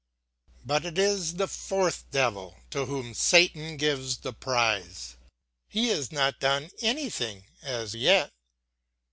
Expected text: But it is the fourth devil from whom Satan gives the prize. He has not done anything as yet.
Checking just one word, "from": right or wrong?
wrong